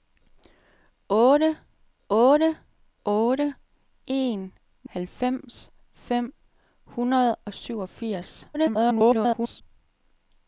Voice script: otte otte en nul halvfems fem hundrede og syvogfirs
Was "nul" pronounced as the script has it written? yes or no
no